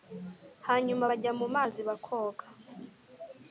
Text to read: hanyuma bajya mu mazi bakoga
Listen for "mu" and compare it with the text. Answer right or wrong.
right